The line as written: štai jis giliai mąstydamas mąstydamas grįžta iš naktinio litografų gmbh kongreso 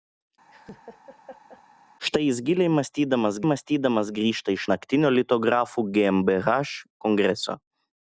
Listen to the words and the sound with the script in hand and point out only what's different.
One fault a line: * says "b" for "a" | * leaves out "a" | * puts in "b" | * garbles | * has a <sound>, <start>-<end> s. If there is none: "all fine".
* has a laugh, 0.5-1.6 s